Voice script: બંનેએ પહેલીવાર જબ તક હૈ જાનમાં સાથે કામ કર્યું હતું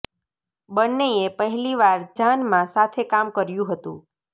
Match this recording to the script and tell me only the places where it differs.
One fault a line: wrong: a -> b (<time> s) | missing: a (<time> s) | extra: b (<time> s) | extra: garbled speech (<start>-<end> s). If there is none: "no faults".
missing: જબ તક હૈ (2.0 s)